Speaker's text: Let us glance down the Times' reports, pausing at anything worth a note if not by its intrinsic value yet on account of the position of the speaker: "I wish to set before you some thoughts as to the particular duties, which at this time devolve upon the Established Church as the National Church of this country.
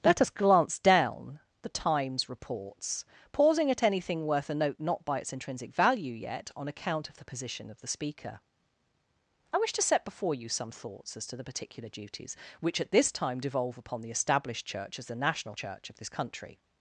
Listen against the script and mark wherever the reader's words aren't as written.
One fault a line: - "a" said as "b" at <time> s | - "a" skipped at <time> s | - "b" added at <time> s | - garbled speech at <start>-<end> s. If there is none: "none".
- "if" skipped at 4.8 s